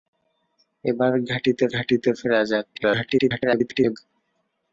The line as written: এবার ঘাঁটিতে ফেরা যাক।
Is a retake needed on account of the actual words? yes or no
yes